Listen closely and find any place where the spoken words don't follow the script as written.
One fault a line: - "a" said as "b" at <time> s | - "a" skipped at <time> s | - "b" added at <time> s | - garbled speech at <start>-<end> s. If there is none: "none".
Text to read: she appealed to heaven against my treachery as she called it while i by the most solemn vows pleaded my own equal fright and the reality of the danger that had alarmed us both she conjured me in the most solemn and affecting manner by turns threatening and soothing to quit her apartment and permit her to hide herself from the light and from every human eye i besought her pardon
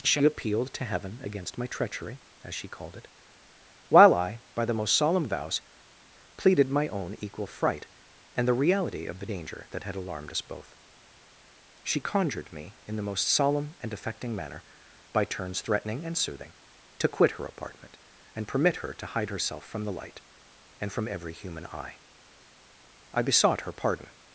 none